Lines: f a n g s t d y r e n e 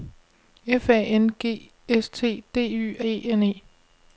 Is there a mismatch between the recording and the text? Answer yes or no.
yes